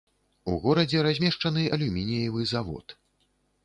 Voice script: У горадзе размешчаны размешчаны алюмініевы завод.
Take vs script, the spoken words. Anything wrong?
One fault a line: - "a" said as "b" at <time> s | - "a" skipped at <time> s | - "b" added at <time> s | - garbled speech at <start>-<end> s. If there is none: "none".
- "размешчаны" skipped at 1.7 s